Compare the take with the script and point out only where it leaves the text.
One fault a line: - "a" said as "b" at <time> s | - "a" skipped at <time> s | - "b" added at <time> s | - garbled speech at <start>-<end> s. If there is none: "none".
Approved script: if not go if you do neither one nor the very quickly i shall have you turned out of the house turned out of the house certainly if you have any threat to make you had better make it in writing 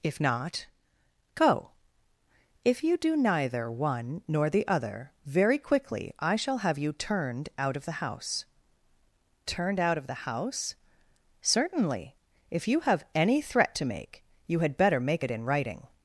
- "other" added at 4.7 s